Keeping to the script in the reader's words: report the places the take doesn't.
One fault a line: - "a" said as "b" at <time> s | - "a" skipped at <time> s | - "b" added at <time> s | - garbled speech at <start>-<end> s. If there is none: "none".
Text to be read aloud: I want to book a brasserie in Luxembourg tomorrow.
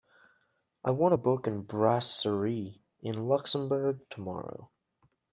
none